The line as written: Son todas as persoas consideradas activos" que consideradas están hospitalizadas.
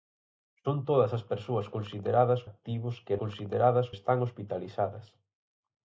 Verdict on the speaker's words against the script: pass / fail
pass